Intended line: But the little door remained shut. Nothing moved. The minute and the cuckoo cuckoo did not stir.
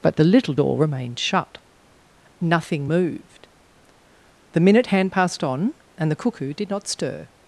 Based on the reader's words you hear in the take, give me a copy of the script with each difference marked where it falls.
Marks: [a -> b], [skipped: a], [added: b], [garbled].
But the little door remained shut. Nothing moved. The minute [added: hand passed on] and the cuckoo [skipped: cuckoo] did not stir.